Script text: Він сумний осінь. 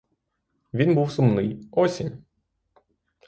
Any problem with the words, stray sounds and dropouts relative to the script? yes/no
yes